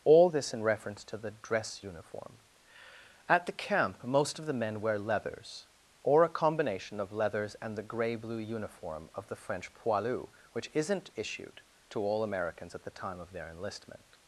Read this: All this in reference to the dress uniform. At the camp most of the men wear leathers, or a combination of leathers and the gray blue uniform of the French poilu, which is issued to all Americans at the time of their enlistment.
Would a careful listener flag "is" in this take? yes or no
yes